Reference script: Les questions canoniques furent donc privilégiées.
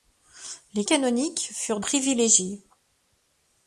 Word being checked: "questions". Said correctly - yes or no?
no